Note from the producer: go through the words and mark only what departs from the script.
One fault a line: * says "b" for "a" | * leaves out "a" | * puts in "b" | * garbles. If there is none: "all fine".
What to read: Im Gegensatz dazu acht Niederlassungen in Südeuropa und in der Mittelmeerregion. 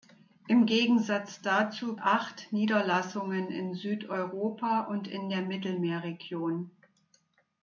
all fine